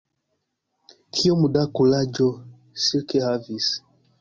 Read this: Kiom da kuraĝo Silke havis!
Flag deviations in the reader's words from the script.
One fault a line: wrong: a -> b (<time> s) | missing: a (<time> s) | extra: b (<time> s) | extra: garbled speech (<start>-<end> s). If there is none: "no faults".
no faults